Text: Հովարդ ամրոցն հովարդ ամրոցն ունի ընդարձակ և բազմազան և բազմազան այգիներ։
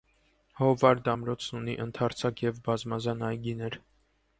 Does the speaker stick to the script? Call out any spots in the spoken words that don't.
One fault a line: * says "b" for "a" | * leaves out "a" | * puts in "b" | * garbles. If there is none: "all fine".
* leaves out "հովարդ ամրոցն"
* leaves out "և բազմազան"